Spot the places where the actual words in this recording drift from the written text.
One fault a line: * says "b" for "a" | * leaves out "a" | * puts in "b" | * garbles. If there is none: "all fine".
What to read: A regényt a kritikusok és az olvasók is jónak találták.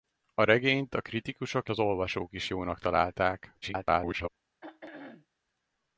* leaves out "és"
* garbles